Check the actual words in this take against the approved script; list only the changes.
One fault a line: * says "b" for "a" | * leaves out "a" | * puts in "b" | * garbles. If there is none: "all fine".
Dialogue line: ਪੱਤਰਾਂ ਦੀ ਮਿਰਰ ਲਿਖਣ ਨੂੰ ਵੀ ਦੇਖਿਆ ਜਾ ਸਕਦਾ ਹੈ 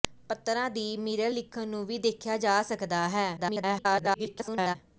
* garbles